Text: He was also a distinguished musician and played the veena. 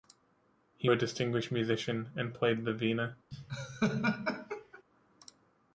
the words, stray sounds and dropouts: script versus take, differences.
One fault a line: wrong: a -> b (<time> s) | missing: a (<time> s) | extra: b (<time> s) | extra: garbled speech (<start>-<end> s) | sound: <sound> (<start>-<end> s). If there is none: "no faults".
missing: was also (0.9 s)
sound: laugh (3.3-4.8 s)